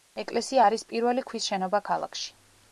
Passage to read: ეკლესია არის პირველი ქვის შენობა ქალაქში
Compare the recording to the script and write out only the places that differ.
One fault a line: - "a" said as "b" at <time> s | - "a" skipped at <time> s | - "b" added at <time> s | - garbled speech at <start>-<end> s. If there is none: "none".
none